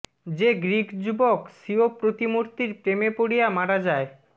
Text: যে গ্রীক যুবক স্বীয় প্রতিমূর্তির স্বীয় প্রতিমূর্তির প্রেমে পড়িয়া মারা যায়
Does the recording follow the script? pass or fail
fail